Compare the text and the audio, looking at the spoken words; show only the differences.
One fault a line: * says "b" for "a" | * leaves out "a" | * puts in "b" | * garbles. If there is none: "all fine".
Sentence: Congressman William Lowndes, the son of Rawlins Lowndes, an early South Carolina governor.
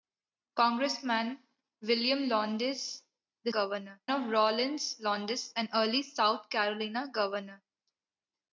* says "governor" for "son"